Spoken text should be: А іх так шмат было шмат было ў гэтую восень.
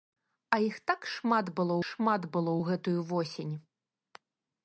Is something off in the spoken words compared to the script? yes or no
no